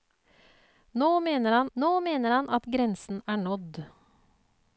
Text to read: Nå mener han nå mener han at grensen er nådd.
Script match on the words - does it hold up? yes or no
yes